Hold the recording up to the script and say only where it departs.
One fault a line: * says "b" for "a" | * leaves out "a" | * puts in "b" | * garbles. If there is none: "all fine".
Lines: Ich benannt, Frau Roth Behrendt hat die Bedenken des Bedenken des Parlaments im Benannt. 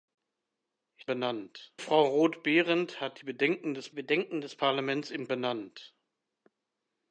all fine